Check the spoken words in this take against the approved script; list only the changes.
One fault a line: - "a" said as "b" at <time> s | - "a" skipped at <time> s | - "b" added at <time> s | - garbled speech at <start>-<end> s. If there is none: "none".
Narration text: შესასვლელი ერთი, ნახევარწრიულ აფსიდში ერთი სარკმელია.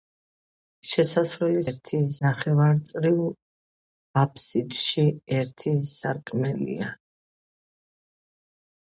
none